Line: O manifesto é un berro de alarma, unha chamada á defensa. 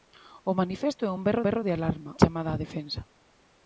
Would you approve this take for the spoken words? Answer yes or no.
no